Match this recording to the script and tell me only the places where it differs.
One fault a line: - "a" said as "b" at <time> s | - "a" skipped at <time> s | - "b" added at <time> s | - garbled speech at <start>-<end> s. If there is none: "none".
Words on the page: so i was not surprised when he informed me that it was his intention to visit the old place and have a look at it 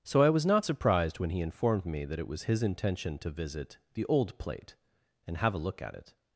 - "place" said as "plate" at 4.4 s